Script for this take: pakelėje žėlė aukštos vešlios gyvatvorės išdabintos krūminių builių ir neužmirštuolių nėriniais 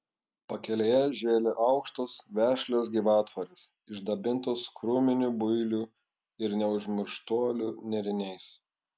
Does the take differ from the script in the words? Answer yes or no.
no